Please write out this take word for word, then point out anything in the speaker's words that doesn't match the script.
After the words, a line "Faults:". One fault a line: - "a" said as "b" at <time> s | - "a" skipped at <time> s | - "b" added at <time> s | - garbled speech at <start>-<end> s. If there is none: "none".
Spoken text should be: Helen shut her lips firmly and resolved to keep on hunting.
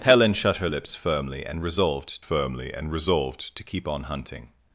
Helen shut her lips firmly and resolved firmly and resolved to keep on hunting.
Faults:
- "firmly and resolved" added at 2.2 s